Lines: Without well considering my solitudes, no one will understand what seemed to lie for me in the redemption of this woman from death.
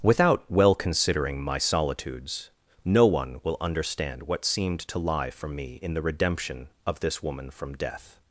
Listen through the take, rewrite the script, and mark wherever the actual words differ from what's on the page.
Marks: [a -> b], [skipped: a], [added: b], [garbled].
Without well considering my solitudes, no one will understand what seemed to lie for me in the redemption of this woman from death.